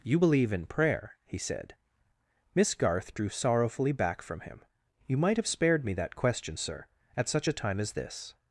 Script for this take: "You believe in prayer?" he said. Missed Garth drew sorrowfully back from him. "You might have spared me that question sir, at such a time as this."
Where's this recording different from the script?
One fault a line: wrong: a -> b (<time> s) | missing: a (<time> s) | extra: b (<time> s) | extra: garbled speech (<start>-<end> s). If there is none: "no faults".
wrong: Missed -> Miss (2.6 s)